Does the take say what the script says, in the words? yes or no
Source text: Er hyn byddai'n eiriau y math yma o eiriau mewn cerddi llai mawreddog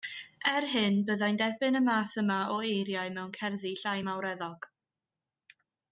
no